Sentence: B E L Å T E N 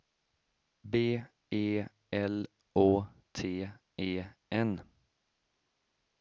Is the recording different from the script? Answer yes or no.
no